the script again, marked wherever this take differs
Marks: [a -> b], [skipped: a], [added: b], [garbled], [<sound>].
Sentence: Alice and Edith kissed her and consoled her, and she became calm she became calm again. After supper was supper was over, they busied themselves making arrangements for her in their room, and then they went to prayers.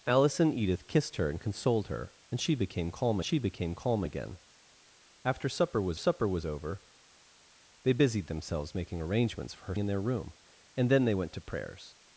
Alice and Edith kissed her and consoled her, and she became calm she became calm again. After supper was supper was over, they busied themselves making arrangements for her in their room, and then they went to prayers.